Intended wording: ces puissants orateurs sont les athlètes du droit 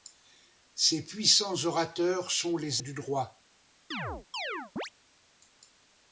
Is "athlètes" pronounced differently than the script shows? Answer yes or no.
yes